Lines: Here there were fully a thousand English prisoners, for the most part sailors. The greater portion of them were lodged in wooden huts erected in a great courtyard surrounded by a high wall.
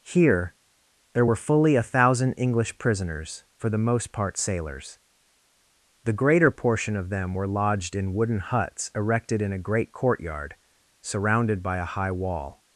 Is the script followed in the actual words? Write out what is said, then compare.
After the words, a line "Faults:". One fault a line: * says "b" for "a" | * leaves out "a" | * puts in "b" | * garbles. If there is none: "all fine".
Here there were fully a thousand English prisoners, for the most part sailors. The greater portion of them were lodged in wooden huts erected in a great courtyard surrounded by a high wall.
Faults:
all fine